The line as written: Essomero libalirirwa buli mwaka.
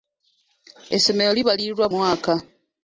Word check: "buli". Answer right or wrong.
wrong